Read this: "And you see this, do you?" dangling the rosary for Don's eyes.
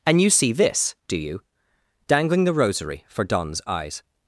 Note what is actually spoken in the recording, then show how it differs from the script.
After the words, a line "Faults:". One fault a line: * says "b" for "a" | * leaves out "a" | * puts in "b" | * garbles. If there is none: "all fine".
"And you see this, do you?" dangling the rosary for Don's eyes.
Faults:
all fine